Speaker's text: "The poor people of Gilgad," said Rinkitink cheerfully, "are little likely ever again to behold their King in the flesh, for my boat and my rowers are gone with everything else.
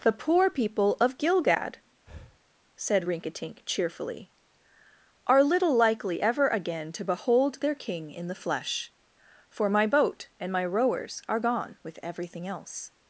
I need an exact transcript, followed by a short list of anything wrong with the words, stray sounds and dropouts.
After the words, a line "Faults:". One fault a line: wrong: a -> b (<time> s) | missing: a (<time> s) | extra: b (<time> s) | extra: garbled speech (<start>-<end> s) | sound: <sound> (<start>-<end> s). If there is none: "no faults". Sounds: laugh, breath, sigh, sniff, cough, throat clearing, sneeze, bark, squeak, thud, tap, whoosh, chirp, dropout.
"The poor people of Gilgad," said Rinkitink cheerfully, "are little likely ever again to behold their King in the flesh, for my boat and my rowers are gone with everything else.
Faults:
sound: breath (2.1-2.4 s)